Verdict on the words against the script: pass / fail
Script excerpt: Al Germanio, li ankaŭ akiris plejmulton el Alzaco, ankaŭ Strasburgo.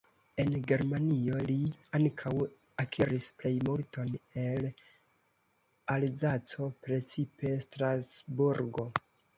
fail